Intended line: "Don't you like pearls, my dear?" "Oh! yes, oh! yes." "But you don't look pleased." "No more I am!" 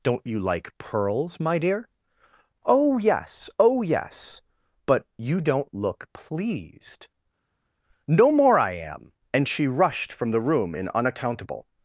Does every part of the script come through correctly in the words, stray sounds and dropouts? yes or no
no